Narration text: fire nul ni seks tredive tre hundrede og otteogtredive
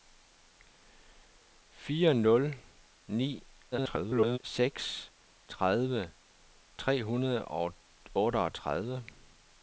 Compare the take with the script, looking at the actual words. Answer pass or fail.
fail